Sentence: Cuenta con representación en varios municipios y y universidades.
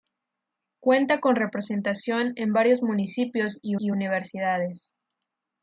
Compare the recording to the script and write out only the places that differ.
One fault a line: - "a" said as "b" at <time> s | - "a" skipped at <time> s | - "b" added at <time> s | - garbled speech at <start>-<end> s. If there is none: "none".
none